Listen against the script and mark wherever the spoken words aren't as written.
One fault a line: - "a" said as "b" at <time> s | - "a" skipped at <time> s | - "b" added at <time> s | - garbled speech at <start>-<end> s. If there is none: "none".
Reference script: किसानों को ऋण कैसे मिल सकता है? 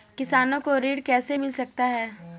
none